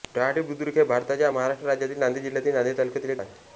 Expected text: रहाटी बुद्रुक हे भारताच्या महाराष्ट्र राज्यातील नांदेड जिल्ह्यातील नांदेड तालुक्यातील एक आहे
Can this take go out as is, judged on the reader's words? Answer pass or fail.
pass